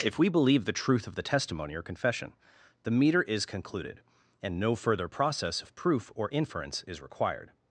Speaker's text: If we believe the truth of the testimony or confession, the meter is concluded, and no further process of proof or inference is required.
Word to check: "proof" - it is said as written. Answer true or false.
true